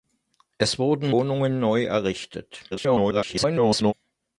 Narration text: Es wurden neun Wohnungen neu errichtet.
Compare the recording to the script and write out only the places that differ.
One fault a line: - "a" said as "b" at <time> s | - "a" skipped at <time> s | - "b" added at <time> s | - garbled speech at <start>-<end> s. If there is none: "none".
- "neun" skipped at 1.1 s
- garbled speech at 2.7-3.9 s